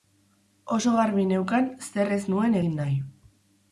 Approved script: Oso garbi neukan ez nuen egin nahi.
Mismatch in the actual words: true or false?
true